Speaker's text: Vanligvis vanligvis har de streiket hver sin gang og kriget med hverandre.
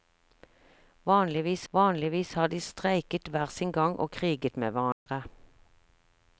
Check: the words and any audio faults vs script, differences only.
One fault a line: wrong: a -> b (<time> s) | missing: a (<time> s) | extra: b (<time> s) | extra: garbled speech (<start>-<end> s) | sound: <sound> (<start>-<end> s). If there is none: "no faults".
sound: dropout (4.9-5.1 s)